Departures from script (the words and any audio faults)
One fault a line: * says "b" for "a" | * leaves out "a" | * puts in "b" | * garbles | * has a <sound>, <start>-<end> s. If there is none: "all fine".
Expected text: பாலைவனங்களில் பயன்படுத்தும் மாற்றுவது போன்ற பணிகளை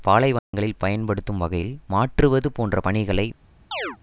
* has a dropout, 0.4-0.5 s
* puts in "வகையில்"
* has a chirp, 3.7-4.0 s